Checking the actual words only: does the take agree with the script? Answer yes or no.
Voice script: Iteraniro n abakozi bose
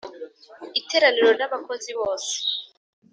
yes